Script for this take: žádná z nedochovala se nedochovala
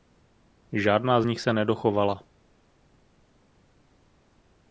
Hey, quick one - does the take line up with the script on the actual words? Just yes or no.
no